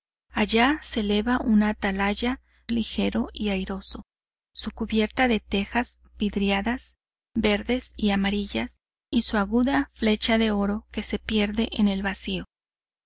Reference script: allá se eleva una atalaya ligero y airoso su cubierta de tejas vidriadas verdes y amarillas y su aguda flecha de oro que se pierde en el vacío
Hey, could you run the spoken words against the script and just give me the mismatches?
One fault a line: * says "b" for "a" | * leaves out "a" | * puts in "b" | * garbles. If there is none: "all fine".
all fine